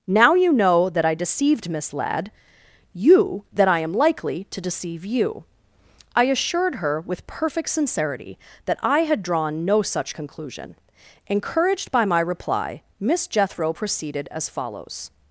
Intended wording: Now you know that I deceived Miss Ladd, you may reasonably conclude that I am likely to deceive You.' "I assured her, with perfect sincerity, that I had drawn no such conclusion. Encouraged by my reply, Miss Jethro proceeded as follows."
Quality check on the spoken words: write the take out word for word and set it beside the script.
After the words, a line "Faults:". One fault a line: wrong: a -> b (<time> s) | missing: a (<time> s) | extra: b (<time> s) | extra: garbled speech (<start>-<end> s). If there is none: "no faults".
Now you know that I deceived Miss Ladd, you that I am likely to deceive You.' "I assured her, with perfect sincerity, that I had drawn no such conclusion. Encouraged by my reply, Miss Jethro proceeded as follows."
Faults:
missing: may reasonably conclude (3.4 s)